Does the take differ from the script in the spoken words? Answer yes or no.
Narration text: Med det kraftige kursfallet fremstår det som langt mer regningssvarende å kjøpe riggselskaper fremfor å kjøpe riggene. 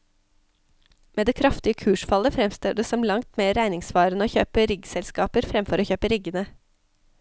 no